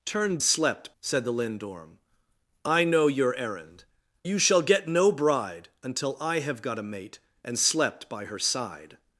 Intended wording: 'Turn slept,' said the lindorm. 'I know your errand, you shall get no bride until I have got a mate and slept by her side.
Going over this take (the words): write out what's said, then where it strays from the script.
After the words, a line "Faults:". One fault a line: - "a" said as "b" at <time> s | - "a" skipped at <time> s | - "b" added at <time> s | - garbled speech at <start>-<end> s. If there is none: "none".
'Turn slept,' said the lindorm. 'I know your errand, you shall get no bride until I have got a mate and slept by her side.
Faults:
none